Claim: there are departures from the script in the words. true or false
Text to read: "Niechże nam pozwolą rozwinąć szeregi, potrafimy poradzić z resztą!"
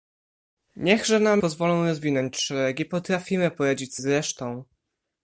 false